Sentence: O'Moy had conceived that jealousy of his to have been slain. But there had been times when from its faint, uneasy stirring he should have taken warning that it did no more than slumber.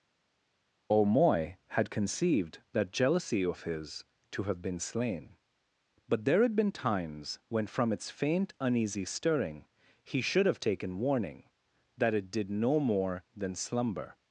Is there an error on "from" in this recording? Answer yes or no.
no